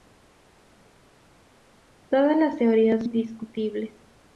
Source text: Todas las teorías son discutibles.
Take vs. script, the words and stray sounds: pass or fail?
fail